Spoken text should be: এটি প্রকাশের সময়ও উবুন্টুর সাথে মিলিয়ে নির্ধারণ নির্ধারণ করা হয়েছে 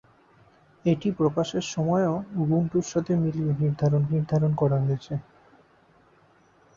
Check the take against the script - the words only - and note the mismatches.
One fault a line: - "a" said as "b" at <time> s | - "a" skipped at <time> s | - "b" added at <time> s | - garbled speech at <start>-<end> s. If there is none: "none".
none